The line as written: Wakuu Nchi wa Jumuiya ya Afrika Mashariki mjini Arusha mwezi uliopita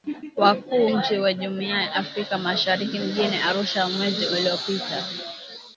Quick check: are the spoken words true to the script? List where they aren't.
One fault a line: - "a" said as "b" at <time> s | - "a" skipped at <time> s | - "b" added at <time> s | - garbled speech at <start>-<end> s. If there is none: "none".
none